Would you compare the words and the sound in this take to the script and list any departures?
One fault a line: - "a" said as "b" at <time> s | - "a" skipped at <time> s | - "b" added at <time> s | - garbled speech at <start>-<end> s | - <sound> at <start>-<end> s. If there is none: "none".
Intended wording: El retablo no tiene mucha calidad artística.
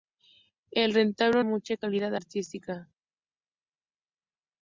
- "no tiene" skipped at 1.4 s